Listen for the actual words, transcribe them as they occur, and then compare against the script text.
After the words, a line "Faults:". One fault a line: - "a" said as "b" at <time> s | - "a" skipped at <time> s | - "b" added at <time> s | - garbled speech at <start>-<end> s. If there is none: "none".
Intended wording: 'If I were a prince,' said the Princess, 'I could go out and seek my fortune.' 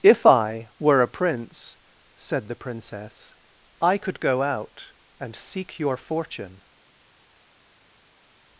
'If I were a prince,' said the Princess, 'I could go out and seek your fortune.'
Faults:
- "my" said as "your" at 5.8 s